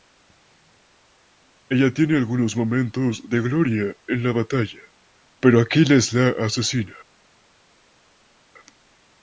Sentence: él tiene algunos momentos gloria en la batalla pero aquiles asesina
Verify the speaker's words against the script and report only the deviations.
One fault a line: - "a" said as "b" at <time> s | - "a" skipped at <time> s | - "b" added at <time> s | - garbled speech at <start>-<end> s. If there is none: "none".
- "él" said as "ella" at 1.7 s
- "de" added at 3.3 s
- "la" added at 6.1 s